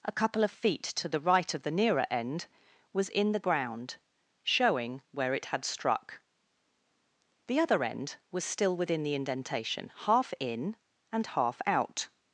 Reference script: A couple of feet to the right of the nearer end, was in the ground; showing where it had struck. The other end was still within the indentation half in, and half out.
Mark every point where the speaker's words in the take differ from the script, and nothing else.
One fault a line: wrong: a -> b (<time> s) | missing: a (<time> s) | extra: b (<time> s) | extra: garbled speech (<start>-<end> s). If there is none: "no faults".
no faults